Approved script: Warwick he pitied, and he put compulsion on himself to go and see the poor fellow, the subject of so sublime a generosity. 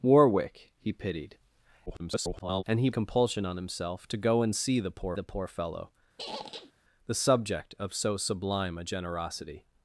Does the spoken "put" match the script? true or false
false